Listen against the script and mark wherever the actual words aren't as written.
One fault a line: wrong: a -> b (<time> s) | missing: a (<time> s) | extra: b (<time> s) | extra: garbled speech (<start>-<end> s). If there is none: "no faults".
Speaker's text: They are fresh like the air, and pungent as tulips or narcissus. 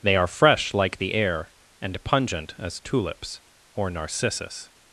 no faults